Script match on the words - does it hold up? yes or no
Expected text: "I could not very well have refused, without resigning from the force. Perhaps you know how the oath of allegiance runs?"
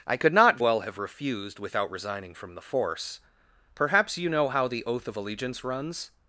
no